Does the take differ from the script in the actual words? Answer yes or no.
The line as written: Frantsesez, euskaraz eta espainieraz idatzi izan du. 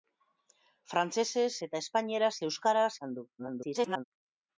yes